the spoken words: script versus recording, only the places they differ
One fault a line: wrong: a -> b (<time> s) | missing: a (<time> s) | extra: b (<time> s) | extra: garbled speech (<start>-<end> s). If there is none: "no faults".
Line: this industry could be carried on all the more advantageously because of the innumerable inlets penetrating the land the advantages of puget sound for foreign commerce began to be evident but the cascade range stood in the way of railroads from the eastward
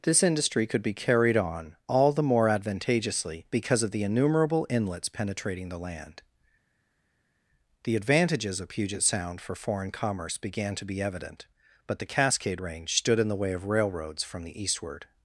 no faults